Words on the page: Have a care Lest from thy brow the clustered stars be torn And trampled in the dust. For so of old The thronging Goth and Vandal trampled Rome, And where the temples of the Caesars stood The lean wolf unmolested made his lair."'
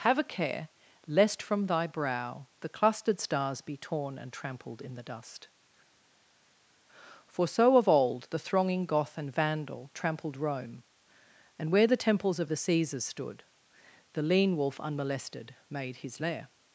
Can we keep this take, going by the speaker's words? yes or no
yes